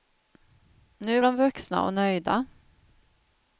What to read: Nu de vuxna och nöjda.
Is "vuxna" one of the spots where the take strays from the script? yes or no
no